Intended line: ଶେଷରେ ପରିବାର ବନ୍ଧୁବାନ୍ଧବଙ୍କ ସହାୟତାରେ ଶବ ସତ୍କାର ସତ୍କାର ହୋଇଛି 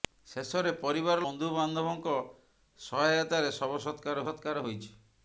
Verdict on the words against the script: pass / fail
pass